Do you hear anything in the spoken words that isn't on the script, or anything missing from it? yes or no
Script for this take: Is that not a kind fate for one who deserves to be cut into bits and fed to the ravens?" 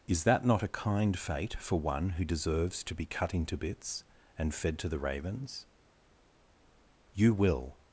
yes